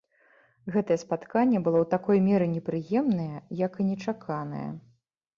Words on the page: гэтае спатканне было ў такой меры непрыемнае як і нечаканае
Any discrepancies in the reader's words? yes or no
no